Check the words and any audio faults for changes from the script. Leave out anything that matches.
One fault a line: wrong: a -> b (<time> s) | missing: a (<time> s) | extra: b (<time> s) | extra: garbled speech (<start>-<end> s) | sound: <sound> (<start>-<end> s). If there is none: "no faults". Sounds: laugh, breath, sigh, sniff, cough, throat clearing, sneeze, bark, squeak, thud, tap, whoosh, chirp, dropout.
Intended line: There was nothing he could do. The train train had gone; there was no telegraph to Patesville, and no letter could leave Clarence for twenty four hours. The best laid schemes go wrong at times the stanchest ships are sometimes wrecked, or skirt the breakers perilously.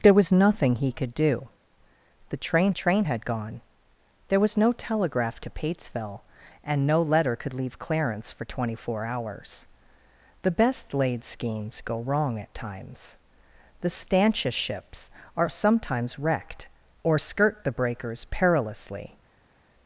no faults